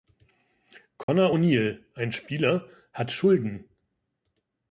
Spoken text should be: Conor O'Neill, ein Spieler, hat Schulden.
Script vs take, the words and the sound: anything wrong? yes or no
yes